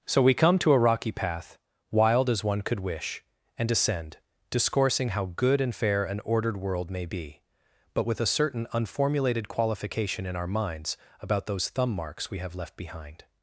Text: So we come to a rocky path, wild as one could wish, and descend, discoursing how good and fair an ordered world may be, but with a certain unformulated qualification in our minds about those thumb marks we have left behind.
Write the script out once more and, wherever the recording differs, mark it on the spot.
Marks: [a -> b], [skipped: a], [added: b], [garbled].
So we come to a rocky path, wild as one could wish, and descend, discoursing how good and fair an ordered world may be, but with a certain unformulated qualification in our minds about those thumb marks we have left behind.